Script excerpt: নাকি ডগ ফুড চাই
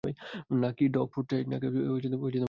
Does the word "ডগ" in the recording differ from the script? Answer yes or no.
no